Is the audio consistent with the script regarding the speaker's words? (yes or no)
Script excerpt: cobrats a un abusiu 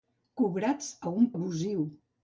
yes